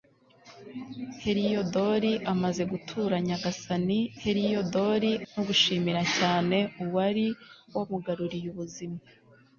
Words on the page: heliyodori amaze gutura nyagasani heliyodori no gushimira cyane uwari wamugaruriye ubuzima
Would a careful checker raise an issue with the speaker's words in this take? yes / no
no